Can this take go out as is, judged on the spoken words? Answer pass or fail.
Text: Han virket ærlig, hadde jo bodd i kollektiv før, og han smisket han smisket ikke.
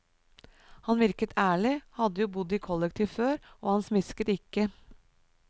fail